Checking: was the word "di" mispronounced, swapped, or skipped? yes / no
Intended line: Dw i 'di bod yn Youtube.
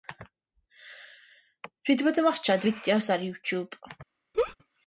no